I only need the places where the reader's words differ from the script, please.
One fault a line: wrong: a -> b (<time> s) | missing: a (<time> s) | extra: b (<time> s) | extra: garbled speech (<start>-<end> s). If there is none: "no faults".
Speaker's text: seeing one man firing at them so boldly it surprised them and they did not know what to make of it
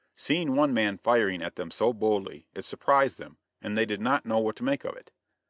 no faults